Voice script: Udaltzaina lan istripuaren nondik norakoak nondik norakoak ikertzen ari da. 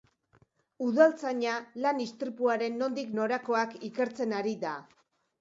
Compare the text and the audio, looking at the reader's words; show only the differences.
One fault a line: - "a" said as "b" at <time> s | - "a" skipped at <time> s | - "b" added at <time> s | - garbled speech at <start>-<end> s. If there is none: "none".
- "nondik norakoak" skipped at 3.8 s